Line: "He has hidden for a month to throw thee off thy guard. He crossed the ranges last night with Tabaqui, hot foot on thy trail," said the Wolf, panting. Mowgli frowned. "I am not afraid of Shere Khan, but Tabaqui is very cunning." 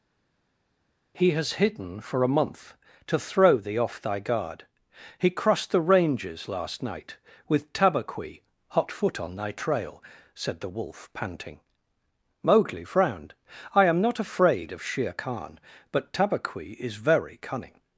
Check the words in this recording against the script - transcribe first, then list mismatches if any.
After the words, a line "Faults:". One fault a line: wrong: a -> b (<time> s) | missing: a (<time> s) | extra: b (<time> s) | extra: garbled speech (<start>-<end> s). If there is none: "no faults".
"He has hidden for a month to throw thee off thy guard. He crossed the ranges last night with Tabaqui, hot foot on thy trail," said the Wolf, panting. Mowgli frowned. "I am not afraid of Shere Khan, but Tabaqui is very cunning."
Faults:
no faults